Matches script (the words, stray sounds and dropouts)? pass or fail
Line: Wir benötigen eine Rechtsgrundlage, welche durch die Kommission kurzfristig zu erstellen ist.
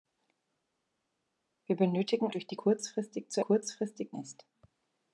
fail